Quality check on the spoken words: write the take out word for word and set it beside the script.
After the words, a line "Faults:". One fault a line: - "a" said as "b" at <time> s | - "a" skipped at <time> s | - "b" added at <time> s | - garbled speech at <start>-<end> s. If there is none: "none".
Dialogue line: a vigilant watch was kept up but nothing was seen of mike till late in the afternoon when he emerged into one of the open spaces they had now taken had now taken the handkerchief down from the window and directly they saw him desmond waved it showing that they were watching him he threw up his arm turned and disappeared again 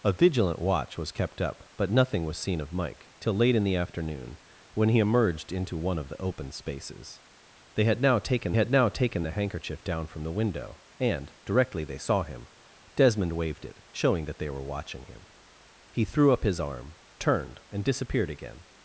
a vigilant watch was kept up but nothing was seen of mike till late in the afternoon when he emerged into one of the open spaces they had now taken had now taken the handkerchief down from the window and directly they saw him desmond waved it showing that they were watching him he threw up his arm turned and disappeared again
Faults:
none